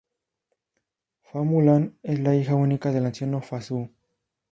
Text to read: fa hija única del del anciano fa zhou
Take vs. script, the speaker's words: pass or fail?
fail